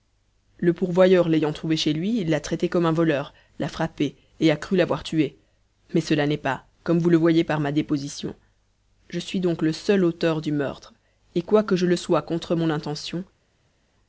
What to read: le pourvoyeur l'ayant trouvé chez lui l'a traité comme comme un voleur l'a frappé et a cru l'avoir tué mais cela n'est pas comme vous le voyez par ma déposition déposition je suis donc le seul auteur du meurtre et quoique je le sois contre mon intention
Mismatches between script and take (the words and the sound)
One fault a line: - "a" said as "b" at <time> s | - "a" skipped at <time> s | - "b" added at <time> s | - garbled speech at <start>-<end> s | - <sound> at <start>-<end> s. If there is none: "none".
- "comme" skipped at 2.9 s
- "déposition" skipped at 8.3 s